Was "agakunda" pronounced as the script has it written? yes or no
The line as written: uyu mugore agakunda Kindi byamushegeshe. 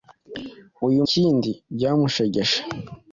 no